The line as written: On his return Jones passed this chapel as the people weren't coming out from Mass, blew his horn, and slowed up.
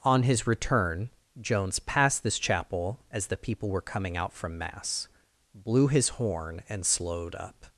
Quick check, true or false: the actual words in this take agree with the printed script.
false